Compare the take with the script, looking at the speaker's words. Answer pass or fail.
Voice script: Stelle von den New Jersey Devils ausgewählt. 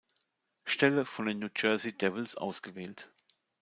pass